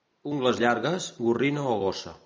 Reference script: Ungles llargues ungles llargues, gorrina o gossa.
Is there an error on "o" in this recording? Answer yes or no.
no